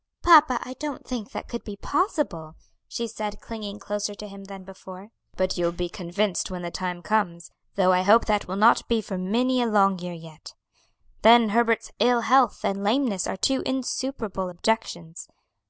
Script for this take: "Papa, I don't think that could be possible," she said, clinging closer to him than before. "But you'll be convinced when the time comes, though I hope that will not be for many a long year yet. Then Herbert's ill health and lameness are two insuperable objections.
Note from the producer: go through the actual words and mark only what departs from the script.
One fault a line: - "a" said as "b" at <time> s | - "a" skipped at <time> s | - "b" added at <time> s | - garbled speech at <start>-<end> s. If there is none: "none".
none